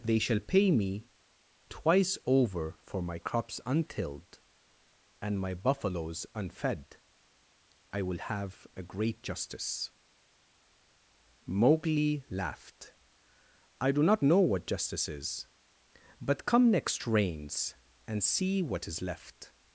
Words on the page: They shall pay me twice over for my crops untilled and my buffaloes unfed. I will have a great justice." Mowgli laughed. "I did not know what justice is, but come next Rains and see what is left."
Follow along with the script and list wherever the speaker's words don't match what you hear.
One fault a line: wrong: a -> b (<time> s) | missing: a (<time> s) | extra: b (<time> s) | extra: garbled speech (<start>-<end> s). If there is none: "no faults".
wrong: did -> do (13.9 s)